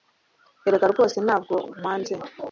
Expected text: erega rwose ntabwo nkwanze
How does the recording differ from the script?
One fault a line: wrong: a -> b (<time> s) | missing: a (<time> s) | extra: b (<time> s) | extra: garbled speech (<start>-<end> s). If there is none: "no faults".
no faults